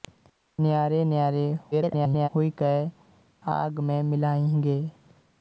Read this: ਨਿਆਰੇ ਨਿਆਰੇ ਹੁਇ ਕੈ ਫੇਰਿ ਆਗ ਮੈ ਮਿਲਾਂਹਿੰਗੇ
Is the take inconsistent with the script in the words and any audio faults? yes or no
yes